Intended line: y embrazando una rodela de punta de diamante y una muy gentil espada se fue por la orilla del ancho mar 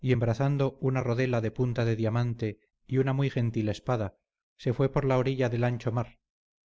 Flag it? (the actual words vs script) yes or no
no